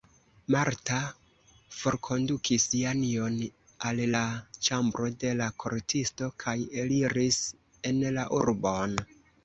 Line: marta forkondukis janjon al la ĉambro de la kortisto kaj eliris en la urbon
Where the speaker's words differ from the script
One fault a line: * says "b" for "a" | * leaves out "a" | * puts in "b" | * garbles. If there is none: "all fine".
all fine